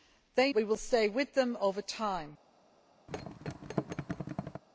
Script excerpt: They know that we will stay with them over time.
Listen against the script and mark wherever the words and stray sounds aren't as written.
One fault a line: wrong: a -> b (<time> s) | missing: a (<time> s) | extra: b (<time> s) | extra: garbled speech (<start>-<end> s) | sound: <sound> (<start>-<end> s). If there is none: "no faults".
missing: know that (0.5 s)
sound: thud (3.1-4.6 s)